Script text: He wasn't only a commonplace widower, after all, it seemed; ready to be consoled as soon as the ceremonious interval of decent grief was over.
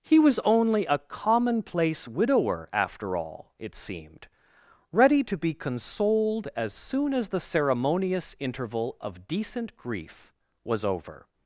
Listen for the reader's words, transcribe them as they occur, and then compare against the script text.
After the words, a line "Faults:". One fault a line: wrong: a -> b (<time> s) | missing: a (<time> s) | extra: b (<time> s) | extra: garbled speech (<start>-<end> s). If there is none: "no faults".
He was only a commonplace widower, after all, it seemed; ready to be consoled as soon as the ceremonious interval of decent grief was over.
Faults:
wrong: wasn't -> was (0.2 s)